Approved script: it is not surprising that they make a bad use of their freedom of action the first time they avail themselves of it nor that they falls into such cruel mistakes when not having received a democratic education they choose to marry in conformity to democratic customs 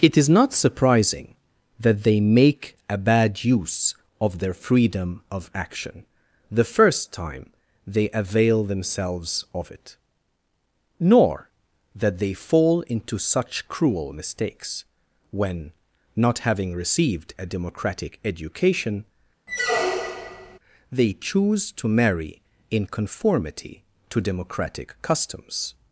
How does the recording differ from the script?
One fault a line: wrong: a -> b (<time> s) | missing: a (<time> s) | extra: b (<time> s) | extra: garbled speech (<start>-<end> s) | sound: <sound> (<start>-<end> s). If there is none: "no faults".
wrong: falls -> fall (12.3 s)
sound: squeak (19.5-20.6 s)